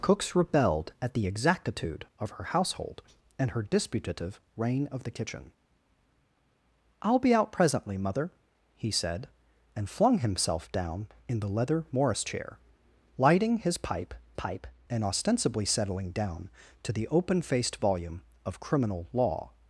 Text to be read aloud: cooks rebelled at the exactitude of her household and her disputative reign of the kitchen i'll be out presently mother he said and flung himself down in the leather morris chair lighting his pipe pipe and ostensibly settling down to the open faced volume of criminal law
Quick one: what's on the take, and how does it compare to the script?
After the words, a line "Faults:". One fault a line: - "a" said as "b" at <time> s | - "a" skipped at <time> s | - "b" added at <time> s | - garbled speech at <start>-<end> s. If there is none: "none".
cooks rebelled at the exactitude of her household and her disputative reign of the kitchen i'll be out presently mother he said and flung himself down in the leather morris chair lighting his pipe pipe and ostensibly settling down to the open faced volume of criminal law
Faults:
none